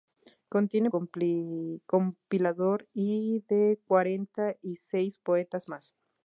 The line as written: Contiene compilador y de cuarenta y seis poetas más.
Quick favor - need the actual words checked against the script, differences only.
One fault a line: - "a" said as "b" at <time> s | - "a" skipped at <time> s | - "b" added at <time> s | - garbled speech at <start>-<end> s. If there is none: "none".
none